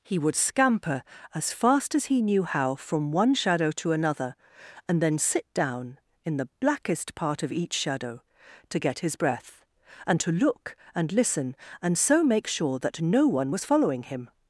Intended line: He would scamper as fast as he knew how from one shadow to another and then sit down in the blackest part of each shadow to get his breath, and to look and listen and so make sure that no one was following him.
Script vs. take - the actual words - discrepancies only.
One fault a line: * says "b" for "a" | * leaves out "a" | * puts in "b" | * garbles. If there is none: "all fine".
all fine